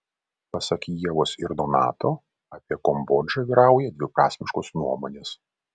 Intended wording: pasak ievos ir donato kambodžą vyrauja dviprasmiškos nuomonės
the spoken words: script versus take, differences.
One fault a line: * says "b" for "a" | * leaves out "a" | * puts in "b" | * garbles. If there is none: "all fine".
* puts in "apie"